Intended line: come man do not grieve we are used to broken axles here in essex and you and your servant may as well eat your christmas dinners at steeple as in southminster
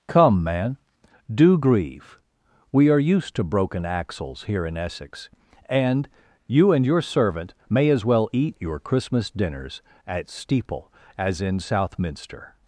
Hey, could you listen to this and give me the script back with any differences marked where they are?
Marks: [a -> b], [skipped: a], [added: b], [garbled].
come man do [skipped: not] grieve we are used to broken axles here in essex and you and your servant may as well eat your christmas dinners at steeple as in southminster